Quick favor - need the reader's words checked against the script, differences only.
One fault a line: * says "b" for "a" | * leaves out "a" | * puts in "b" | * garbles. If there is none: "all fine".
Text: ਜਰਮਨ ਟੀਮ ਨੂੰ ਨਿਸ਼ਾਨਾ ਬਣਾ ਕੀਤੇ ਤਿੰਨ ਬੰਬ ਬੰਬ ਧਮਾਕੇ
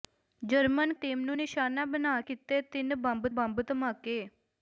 all fine